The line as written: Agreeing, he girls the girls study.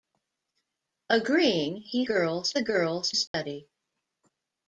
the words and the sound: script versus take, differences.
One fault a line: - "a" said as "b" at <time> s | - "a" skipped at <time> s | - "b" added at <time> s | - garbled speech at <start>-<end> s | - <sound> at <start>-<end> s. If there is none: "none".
- dropout at 3.3-3.3 s